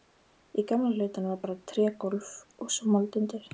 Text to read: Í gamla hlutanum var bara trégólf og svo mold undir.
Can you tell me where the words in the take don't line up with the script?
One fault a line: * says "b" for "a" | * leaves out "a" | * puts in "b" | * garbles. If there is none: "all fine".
all fine